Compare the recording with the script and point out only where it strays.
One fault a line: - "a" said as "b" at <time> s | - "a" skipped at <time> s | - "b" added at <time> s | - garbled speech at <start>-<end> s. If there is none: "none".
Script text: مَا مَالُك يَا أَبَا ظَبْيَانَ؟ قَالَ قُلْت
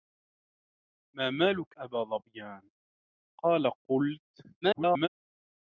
- "يَا" skipped at 1.8 s
- garbled speech at 4.6-5.1 s